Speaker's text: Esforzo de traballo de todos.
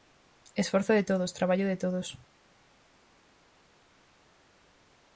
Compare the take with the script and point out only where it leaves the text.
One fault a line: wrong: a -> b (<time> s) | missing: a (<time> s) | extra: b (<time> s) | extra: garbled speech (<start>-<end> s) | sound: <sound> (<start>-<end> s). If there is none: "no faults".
extra: todos (1.0 s)